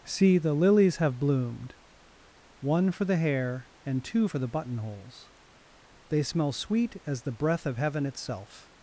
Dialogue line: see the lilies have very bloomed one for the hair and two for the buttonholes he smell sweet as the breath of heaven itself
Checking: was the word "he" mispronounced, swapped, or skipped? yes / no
yes